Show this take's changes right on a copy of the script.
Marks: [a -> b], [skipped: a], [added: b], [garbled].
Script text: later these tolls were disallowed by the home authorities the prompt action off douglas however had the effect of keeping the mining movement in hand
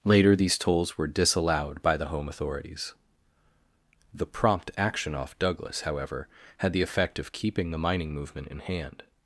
later these tolls were disallowed by the home authorities the prompt action off douglas however had the effect of keeping the mining movement in hand